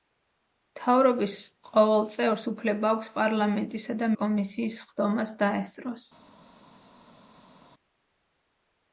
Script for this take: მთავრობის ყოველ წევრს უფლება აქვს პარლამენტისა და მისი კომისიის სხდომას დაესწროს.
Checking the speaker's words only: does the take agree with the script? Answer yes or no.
no